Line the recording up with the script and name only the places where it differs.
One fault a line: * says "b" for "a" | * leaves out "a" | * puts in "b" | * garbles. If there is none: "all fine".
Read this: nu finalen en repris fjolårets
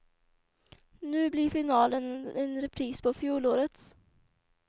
* puts in "blir"
* puts in "på"